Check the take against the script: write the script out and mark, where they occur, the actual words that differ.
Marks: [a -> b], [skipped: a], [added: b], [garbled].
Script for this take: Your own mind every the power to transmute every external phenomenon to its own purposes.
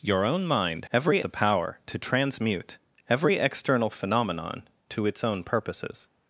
Your own mind every the power to transmute every external phenomenon to its own purposes.